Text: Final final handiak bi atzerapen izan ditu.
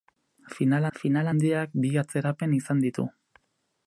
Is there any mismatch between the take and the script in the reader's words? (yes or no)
no